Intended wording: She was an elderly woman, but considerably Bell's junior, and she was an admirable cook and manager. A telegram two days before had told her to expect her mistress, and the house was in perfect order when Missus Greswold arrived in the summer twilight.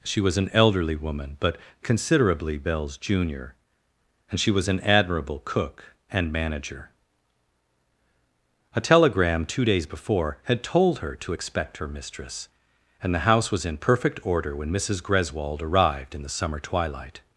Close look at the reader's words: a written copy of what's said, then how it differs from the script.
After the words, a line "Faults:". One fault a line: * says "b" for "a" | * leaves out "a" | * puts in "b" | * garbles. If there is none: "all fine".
She was an elderly woman, but considerably Bell's junior, and she was an admirable cook and manager. A telegram two days before had told her to expect her mistress, and the house was in perfect order when Missus Greswold arrived in the summer twilight.
Faults:
all fine